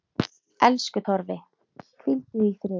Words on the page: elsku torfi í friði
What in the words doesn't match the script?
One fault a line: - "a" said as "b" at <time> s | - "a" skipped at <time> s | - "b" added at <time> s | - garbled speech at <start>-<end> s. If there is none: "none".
- "hvíldu" added at 2.0 s